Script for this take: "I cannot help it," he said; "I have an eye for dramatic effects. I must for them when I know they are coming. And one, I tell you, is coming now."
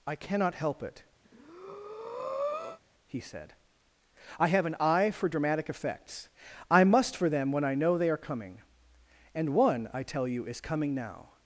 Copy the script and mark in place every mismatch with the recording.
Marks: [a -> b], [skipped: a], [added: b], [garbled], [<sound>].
"I cannot help it," [breath] he said; "I have an eye for dramatic effects. I must for them when I know they are coming. And one, I tell you, is coming now."